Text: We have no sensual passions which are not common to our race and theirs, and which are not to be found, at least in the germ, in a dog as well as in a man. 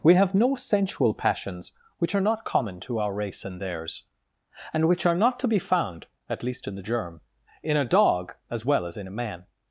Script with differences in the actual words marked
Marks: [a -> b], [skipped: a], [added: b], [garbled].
We have no sensual passions which are not common to our race and theirs, and which are not to be found, at least in the germ, in a dog as well as in a man.